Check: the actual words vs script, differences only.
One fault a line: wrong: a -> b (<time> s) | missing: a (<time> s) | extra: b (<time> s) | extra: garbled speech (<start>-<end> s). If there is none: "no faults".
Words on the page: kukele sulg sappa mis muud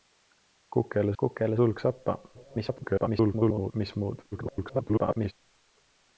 extra: kukele (1.2 s)
extra: garbled speech (2.3-3.7 s)
extra: garbled speech (4.3-5.3 s)